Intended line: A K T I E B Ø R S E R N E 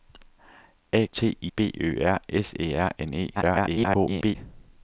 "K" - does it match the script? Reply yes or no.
no